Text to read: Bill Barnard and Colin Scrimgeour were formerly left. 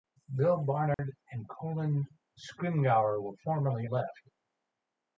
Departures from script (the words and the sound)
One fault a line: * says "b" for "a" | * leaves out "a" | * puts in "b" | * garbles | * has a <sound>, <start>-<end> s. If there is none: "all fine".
* has a dropout, 0.9-1.0 s